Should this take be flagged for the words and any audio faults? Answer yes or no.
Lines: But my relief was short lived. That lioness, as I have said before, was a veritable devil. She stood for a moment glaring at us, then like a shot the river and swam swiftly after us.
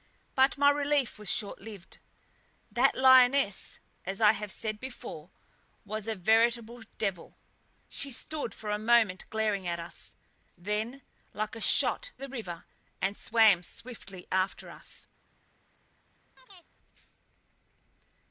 yes